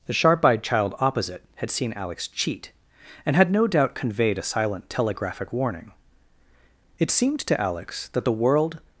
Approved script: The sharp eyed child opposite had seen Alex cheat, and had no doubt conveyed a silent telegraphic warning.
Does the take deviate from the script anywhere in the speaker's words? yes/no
yes